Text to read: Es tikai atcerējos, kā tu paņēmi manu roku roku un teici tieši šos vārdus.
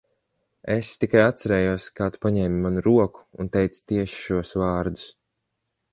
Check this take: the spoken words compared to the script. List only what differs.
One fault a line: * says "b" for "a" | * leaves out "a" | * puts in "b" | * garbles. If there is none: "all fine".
* leaves out "roku"